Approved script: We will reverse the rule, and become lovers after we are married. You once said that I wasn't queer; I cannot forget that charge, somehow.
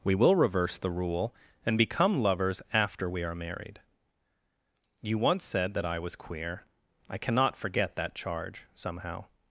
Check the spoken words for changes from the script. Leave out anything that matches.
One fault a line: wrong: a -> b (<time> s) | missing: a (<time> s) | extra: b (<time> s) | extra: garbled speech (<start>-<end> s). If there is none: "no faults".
wrong: wasn't -> was (6.0 s)